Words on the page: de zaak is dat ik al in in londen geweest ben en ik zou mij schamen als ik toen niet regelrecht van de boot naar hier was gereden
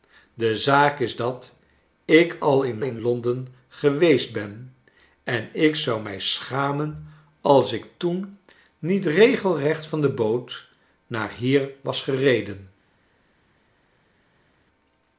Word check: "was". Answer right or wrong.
right